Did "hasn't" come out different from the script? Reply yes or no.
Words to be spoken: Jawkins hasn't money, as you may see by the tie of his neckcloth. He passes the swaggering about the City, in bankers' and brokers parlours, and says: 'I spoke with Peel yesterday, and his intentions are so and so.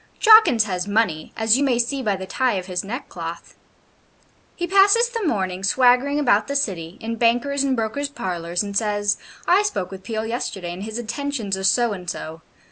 yes